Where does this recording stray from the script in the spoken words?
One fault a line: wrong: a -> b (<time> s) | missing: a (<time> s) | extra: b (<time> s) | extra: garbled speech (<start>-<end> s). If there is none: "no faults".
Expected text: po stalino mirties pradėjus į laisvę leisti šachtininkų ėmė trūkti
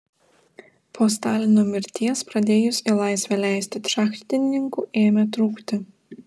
no faults